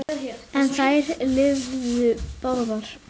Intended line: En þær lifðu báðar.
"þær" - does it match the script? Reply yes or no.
yes